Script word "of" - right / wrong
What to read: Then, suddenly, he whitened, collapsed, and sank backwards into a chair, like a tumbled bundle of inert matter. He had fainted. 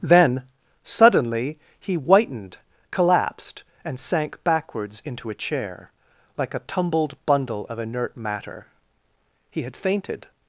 right